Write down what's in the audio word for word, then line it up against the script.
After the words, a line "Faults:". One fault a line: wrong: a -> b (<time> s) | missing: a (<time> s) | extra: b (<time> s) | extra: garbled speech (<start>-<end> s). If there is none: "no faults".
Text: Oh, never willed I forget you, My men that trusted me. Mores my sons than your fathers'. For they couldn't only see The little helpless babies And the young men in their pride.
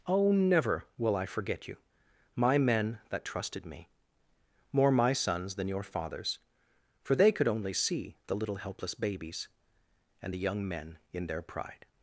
Oh, never will I forget you, My men that trusted me. More my sons than your fathers'. For they could only see The little helpless babies And the young men in their pride.
Faults:
wrong: willed -> will (1.0 s)
wrong: Mores -> More (4.7 s)
wrong: couldn't -> could (7.3 s)